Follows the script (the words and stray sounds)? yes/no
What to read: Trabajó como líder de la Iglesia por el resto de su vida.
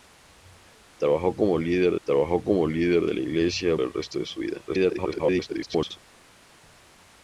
no